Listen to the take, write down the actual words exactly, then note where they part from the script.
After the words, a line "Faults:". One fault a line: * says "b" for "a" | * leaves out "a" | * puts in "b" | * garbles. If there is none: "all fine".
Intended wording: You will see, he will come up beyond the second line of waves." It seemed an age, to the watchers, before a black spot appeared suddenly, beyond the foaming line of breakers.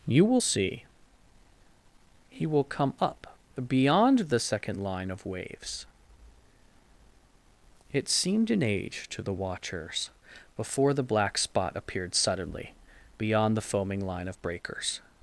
You will see, he will come up beyond the second line of waves." It seemed an age, to the watchers, before the black spot appeared suddenly, beyond the foaming line of breakers.
Faults:
* says "the" for "a"